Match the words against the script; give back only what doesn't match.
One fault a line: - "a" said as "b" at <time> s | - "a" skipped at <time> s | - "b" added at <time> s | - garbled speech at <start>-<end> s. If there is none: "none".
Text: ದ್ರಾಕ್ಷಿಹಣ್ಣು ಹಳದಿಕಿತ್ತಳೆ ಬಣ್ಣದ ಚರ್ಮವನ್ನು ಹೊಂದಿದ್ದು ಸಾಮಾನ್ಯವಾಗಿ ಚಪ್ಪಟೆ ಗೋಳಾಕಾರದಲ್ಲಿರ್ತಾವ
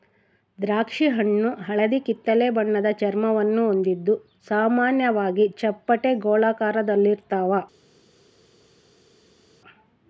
none